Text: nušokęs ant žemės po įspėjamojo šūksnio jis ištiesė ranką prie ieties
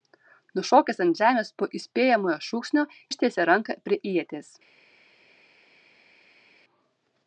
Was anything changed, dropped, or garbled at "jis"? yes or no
yes